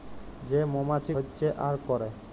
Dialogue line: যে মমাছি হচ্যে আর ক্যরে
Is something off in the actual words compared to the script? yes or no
no